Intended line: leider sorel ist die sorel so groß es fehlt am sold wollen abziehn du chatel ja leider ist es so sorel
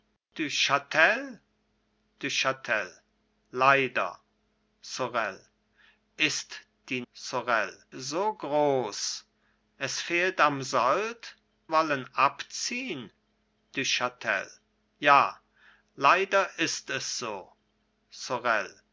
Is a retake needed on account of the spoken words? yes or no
no